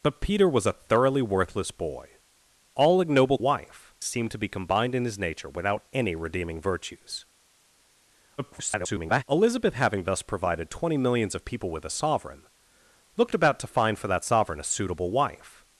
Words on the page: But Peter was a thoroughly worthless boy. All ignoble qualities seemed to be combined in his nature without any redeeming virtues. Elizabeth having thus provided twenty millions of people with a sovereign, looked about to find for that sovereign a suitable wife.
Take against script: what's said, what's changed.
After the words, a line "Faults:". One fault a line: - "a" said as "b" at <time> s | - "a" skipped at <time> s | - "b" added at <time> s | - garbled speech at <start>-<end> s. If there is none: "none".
But Peter was a thoroughly worthless boy. All ignoble wife seemed to be combined in his nature without any redeeming virtues. [garbled] Elizabeth having thus provided twenty millions of people with a sovereign, looked about to find for that sovereign a suitable wife.
Faults:
- "qualities" said as "wife" at 3.4 s
- garbled speech at 8.4-9.2 s